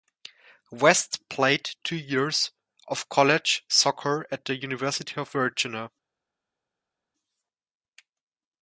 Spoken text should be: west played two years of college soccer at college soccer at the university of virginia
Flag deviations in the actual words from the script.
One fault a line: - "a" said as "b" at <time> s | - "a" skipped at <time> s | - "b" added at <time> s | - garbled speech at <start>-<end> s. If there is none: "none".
- "college soccer at" skipped at 4.5 s